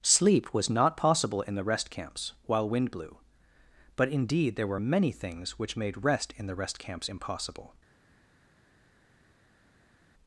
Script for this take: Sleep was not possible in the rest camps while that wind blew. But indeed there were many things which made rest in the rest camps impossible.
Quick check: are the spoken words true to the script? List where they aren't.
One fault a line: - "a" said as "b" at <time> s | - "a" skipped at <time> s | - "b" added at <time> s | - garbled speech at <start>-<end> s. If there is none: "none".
- "that" skipped at 2.7 s